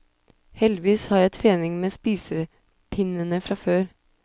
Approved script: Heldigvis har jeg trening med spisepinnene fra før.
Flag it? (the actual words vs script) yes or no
no